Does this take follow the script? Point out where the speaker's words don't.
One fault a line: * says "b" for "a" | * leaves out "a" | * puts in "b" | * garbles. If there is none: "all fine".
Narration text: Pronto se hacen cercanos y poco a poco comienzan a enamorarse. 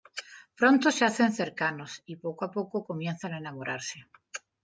all fine